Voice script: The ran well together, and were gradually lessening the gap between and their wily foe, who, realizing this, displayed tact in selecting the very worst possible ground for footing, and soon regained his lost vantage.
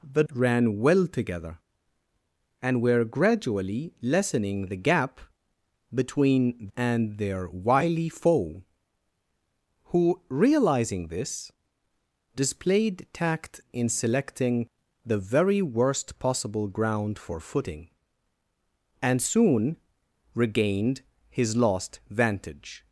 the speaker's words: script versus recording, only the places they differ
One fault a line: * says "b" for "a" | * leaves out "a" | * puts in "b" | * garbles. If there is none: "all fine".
all fine